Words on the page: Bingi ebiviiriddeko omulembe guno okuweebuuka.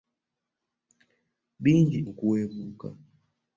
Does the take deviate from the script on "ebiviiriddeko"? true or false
true